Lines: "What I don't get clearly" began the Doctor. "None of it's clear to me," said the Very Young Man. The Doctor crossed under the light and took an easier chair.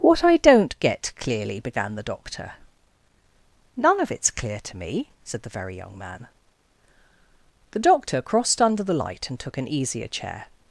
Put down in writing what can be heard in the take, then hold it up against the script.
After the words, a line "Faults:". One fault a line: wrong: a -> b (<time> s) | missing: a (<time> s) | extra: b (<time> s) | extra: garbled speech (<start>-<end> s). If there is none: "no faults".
"What I don't get clearly" began the Doctor. "None of it's clear to me," said the Very Young Man. The Doctor crossed under the light and took an easier chair.
Faults:
no faults